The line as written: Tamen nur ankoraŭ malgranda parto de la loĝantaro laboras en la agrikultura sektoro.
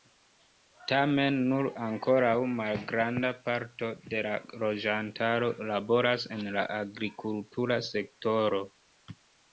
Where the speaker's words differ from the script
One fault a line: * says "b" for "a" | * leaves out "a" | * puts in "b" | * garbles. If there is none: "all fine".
all fine